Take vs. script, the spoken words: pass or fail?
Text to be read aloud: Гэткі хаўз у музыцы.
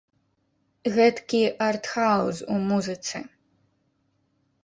fail